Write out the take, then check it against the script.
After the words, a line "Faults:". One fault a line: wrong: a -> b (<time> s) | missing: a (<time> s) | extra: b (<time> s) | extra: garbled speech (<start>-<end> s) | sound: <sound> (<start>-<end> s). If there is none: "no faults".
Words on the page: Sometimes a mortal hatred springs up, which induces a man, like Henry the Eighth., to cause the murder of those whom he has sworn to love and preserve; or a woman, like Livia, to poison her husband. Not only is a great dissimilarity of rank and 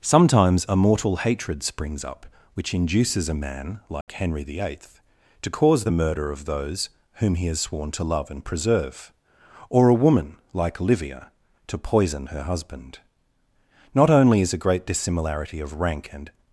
Sometimes a mortal hatred springs up, which induces a man, like Henry the Eighth., to cause the murder of those whom he has sworn to love and preserve; or a woman, like Livia, to poison her husband. Not only is a great dissimilarity of rank and
Faults:
sound: dropout (4.0-4.1 s)